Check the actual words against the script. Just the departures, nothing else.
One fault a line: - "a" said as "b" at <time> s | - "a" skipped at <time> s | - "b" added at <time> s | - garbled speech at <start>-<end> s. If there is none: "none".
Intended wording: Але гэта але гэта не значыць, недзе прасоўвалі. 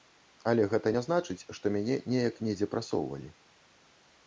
- "але гэта не значыць" said as "не значыць што мяне неяк" at 1.0 s